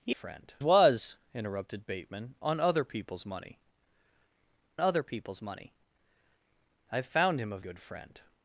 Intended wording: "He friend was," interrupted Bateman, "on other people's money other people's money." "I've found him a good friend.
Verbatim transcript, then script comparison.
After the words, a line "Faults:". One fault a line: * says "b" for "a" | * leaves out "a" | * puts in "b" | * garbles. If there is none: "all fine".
"He friend was," interrupted Bateman, "on other people's money other people's money." "I've found him a good friend.
Faults:
all fine